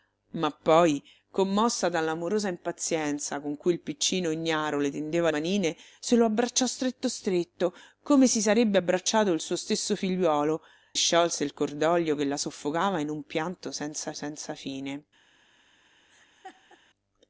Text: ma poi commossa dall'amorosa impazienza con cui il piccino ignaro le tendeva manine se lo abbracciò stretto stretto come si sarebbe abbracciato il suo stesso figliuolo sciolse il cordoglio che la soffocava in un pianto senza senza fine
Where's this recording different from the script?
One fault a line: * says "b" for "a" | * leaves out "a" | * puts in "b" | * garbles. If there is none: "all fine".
all fine